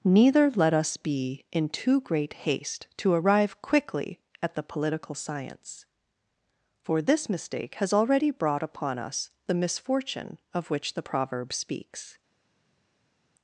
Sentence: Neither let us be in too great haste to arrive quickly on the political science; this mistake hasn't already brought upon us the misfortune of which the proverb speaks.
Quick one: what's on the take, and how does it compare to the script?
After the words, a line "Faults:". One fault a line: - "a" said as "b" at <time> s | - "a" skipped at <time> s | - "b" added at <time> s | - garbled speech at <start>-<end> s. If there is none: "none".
Neither let us be in too great haste to arrive quickly at the political science; for this mistake has already brought upon us the misfortune of which the proverb speaks.
Faults:
- "on" said as "at" at 4.4 s
- "for" added at 6.8 s
- "hasn't" said as "has" at 7.8 s